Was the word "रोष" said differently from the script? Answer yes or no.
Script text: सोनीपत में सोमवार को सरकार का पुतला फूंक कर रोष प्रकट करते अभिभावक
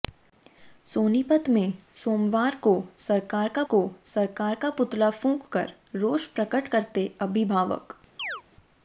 no